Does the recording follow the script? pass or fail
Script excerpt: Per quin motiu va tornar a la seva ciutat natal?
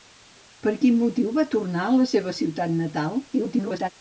fail